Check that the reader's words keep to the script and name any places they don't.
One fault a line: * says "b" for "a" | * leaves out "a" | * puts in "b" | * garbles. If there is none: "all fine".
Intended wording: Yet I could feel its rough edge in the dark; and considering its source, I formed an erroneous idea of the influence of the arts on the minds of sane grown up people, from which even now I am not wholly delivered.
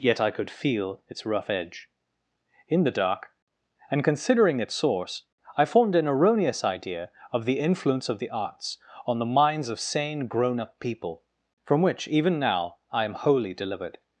* leaves out "not"